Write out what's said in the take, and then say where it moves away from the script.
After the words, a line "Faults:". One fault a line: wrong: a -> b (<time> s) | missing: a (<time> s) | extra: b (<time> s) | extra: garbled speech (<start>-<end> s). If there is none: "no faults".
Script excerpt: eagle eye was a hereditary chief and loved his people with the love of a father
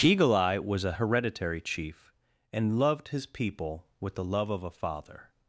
eagle eye was a hereditary chief and loved his people with the love of a father
Faults:
no faults